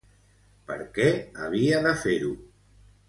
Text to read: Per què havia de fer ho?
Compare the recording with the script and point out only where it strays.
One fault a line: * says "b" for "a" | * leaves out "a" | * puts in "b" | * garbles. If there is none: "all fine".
all fine